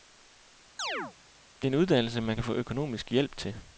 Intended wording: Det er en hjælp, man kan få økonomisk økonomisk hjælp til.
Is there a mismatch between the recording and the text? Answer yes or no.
yes